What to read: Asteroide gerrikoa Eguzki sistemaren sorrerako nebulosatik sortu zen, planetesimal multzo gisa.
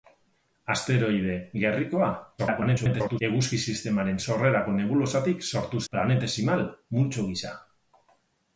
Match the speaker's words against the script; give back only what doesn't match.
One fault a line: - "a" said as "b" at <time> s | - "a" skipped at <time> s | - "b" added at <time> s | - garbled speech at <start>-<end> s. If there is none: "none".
- garbled speech at 2.4-3.2 s
- "zen" skipped at 5.8 s